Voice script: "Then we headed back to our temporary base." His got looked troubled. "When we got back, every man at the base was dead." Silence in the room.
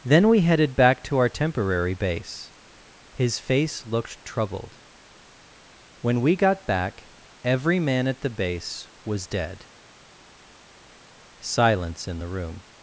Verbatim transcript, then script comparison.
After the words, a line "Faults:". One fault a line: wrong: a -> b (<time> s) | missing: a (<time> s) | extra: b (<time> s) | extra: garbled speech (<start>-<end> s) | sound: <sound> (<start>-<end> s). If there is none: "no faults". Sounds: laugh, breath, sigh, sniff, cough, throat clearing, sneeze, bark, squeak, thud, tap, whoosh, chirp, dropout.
"Then we headed back to our temporary base." His face looked troubled. "When we got back, every man at the base was dead." Silence in the room.
Faults:
wrong: got -> face (3.4 s)